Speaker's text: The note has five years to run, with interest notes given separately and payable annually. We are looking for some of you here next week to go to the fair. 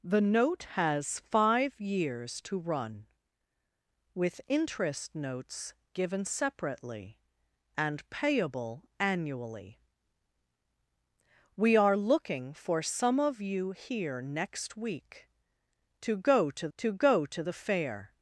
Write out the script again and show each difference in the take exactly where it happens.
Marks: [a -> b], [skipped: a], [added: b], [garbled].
The note has five years to run, with interest notes given separately and payable annually. We are looking for some of you here next week to go to [added: to go to] the fair.